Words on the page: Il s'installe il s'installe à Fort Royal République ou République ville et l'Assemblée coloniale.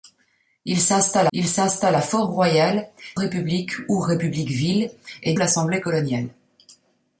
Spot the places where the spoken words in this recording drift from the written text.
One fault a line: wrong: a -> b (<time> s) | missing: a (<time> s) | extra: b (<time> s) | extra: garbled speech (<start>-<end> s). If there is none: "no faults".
no faults